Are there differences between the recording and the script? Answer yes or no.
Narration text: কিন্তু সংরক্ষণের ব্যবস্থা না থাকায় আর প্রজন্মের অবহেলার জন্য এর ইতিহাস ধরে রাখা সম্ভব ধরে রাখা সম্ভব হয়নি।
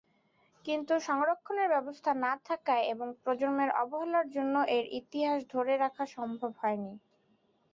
yes